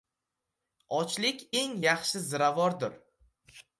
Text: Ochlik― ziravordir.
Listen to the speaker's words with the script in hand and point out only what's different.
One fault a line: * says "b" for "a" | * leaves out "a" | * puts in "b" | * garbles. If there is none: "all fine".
* puts in "eng yaxshi"